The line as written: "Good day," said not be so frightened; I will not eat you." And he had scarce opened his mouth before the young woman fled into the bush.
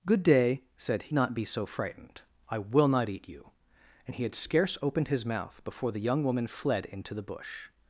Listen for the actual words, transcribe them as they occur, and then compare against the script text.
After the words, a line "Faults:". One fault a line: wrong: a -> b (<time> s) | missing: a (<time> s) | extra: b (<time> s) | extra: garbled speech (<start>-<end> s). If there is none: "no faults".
"Good day," said not be so frightened; I will not eat you." And he had scarce opened his mouth before the young woman fled into the bush.
Faults:
no faults